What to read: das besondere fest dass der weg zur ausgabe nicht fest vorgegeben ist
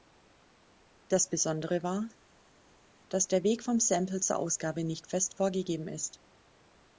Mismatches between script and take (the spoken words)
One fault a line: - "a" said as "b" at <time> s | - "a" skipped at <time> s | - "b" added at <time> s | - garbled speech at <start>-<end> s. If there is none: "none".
- "fest" said as "war" at 1.8 s
- "vom sample" added at 3.6 s